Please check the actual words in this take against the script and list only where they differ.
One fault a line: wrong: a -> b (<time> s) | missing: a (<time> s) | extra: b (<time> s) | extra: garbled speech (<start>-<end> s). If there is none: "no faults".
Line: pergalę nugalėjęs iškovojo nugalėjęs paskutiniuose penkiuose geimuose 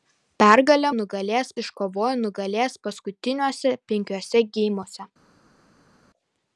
no faults